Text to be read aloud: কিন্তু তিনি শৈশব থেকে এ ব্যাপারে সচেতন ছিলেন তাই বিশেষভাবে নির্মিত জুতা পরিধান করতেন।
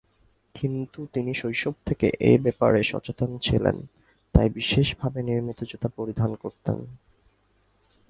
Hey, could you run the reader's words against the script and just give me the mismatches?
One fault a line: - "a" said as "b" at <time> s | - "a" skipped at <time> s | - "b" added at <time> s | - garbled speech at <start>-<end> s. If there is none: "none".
none